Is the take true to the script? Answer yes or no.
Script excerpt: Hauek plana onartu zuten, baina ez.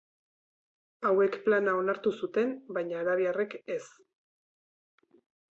no